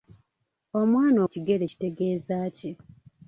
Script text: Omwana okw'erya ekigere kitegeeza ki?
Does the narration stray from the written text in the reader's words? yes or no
yes